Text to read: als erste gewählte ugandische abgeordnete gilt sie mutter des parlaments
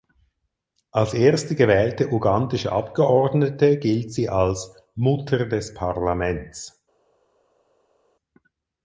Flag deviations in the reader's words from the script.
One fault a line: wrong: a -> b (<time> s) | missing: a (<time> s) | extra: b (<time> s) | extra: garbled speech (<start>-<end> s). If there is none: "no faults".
extra: als (4.3 s)